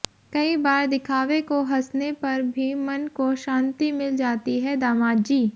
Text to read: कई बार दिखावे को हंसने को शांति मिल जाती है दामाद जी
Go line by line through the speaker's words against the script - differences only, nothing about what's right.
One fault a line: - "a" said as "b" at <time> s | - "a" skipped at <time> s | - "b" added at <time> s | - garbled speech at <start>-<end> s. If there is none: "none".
- "पर भी मन" added at 2.2 s